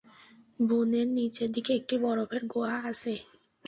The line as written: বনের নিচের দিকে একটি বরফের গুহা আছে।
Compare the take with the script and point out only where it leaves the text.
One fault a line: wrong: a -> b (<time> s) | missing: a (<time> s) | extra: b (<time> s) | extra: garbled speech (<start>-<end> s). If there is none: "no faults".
no faults